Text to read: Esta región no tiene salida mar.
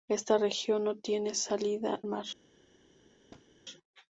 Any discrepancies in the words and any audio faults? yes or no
yes